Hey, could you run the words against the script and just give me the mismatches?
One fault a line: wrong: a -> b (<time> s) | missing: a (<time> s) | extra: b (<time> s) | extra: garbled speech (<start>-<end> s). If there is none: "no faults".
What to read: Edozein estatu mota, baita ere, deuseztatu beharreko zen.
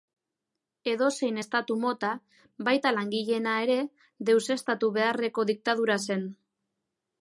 extra: langileena (3.0 s)
extra: diktadura (5.5 s)